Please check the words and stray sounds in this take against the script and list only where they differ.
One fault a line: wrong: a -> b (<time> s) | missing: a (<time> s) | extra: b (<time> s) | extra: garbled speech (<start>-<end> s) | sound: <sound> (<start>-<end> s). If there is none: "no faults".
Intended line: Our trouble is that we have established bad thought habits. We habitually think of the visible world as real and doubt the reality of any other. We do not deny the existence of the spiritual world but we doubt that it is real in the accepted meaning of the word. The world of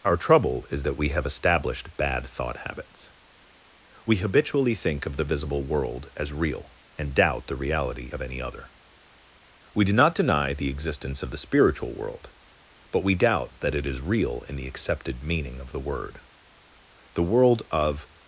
no faults